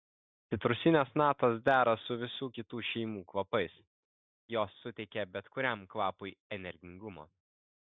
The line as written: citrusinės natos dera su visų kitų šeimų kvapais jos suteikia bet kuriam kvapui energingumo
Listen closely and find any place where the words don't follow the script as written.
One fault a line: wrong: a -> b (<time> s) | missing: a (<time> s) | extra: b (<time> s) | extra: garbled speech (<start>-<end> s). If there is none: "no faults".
no faults